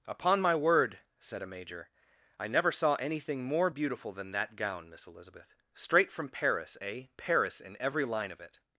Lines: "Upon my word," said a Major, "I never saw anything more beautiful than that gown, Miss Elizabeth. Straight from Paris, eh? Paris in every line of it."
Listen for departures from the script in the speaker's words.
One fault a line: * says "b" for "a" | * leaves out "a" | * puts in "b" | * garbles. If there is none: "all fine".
all fine